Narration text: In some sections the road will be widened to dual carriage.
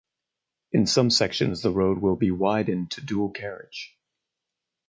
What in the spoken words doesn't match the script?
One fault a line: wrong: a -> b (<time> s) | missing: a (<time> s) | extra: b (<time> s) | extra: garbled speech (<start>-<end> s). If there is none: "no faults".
no faults